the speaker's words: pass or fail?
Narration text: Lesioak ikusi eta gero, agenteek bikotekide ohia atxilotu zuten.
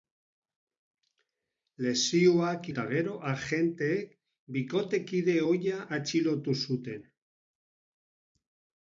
fail